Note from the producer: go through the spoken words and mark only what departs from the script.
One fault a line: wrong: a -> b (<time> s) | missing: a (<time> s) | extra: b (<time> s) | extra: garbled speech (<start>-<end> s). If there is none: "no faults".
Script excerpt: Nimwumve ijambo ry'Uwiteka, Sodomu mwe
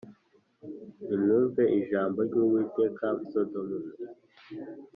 no faults